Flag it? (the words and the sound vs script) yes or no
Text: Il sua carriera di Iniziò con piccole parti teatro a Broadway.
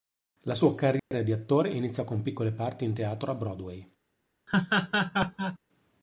yes